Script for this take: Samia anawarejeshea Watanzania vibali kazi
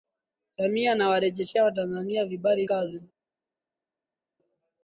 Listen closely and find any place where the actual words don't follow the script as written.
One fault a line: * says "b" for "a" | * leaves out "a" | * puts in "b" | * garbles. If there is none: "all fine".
all fine